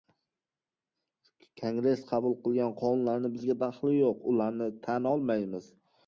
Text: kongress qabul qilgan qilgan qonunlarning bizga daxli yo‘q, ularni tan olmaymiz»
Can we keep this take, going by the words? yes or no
no